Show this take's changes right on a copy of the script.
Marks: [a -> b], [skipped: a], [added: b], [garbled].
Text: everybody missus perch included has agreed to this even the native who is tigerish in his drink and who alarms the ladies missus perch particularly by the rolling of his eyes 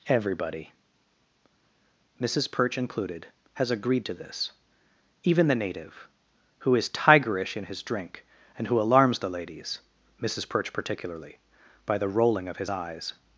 everybody missus perch included has agreed to this even the native who is tigerish in his drink and who alarms the ladies missus perch particularly by the rolling of his eyes